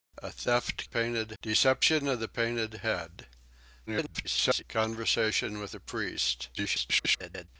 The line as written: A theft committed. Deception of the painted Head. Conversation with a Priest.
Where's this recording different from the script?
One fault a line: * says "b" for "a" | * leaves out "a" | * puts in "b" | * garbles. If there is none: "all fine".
* says "painted" for "committed"
* garbles
* garbles